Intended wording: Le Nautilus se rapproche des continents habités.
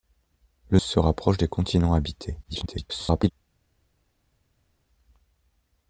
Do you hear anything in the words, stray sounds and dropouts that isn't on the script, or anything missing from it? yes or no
yes